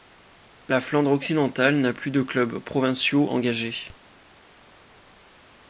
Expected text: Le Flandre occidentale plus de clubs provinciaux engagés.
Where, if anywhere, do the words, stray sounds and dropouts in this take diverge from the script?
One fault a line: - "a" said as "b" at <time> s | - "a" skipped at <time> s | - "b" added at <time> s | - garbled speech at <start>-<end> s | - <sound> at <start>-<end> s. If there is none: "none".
- "Le" said as "La" at 0.7 s
- "n'a" added at 1.8 s